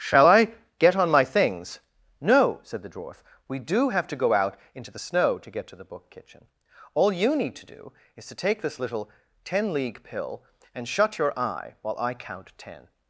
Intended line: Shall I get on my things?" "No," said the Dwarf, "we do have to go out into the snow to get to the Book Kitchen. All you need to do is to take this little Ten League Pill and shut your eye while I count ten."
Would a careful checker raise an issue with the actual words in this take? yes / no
no